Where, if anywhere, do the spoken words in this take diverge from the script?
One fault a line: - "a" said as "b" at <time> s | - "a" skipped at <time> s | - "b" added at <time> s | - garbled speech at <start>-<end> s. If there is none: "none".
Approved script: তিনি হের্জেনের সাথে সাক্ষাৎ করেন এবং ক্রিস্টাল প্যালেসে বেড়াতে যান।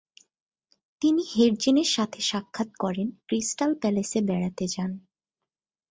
- "এবং" skipped at 3.1 s